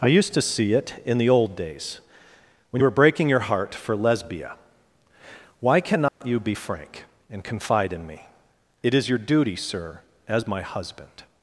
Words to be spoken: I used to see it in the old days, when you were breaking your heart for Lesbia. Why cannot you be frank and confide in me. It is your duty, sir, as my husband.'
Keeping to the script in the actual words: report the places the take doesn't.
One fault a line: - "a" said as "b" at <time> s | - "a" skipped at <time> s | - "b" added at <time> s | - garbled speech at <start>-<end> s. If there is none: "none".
none